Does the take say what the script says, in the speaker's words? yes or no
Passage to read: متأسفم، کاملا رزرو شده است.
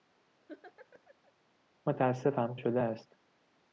no